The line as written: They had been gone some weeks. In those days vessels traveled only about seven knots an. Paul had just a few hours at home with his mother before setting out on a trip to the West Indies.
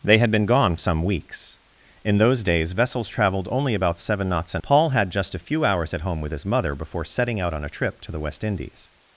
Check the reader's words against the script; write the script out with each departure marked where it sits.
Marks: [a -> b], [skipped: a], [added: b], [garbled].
They had been gone some weeks. In those days vessels traveled only about seven knots an. Paul had just a few hours at home with his mother before setting out on a trip to the West Indies.